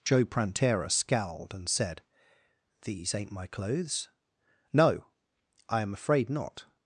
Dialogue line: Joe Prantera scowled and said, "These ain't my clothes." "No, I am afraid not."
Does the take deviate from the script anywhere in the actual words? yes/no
no